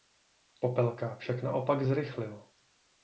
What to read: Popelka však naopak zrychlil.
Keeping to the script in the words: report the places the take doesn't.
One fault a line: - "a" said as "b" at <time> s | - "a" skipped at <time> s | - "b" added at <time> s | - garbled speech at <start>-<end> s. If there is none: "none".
none